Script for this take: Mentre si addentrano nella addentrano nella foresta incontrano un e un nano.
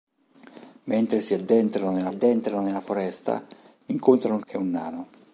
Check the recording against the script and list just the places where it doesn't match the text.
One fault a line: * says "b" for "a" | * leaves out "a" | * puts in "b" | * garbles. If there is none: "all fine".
all fine